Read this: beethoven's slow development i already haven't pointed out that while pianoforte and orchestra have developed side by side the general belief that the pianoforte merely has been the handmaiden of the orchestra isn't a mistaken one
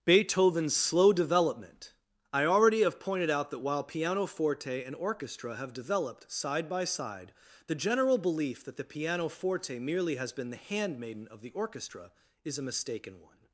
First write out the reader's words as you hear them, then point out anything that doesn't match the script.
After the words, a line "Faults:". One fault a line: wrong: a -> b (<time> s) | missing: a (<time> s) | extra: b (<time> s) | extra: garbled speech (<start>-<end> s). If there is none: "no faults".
beethoven's slow development i already have pointed out that while pianoforte and orchestra have developed side by side the general belief that the pianoforte merely has been the handmaiden of the orchestra is a mistaken one
Faults:
wrong: haven't -> have (2.8 s)
wrong: isn't -> is (12.5 s)